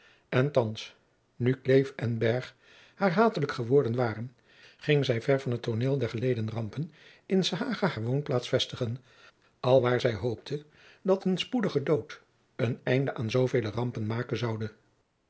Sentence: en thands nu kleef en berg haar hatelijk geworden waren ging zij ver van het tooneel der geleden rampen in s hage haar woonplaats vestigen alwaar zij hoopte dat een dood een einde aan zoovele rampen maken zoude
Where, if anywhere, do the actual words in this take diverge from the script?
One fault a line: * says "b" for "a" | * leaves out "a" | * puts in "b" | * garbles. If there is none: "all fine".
* puts in "spoedige"